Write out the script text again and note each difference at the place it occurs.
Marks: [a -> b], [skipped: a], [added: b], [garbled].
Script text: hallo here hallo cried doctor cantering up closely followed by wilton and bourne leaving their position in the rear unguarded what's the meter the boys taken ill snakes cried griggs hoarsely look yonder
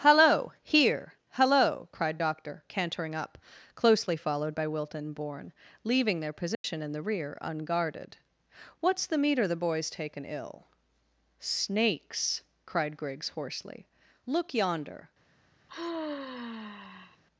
hallo here hallo cried doctor cantering up closely followed by wilton and bourne leaving their position in the rear unguarded what's the meter the boys taken ill snakes cried griggs hoarsely look yonder